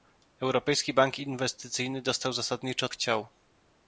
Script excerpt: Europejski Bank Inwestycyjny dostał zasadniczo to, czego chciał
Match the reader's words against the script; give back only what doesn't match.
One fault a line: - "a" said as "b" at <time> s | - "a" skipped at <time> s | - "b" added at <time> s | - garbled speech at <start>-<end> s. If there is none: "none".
- "to czego" skipped at 2.9 s